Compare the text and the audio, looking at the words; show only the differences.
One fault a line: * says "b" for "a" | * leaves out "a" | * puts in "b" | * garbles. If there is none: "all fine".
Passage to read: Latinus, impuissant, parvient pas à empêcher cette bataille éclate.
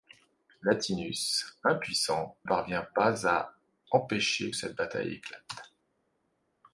all fine